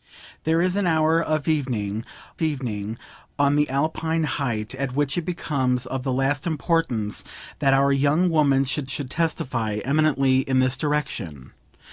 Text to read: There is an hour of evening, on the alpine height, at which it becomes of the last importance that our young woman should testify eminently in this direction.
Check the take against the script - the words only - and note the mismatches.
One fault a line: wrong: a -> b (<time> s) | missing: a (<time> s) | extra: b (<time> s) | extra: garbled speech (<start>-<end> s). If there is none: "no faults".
extra: evening (2.4 s)
extra: should (8.8 s)